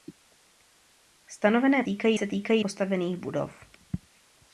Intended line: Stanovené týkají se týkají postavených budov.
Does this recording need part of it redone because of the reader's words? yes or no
no